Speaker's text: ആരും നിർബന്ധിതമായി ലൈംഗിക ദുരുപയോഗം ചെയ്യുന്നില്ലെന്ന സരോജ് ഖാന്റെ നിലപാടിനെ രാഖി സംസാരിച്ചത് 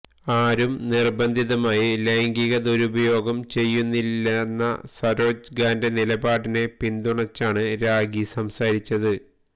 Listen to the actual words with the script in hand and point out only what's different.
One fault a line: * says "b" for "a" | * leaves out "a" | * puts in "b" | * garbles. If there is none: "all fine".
* puts in "പിന്തുണച്ചാണ്"